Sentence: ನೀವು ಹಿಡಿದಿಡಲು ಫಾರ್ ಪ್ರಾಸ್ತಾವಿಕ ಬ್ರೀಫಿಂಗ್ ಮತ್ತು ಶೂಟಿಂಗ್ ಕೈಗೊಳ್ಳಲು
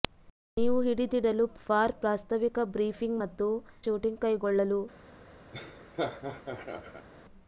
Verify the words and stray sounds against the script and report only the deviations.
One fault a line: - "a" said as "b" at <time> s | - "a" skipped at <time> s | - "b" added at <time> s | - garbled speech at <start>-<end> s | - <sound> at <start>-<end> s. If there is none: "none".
- laugh at 5.5-7.1 s